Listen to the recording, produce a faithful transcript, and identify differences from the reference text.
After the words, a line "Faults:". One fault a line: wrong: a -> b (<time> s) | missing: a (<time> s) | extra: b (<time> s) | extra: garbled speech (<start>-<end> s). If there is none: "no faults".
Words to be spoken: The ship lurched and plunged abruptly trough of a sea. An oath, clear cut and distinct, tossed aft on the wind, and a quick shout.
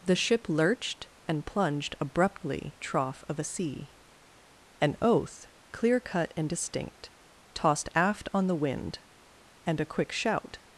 The ship lurched and plunged abruptly trough of a sea. An oath, clear cut and distinct, tossed aft on the wind, and a quick shout.
Faults:
no faults